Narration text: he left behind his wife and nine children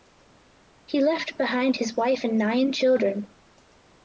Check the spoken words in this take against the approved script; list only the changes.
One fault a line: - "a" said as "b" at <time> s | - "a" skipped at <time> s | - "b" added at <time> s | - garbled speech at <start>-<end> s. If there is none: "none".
none